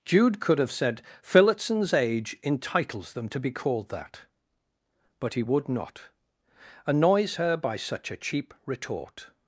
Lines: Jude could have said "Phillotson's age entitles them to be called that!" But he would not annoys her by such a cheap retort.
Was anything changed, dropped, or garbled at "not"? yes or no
no